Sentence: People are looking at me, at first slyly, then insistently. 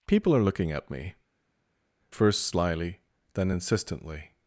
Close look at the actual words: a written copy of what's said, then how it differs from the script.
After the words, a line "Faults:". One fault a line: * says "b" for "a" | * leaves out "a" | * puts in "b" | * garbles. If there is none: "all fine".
People are looking at me, first slyly, then insistently.
Faults:
* leaves out "at"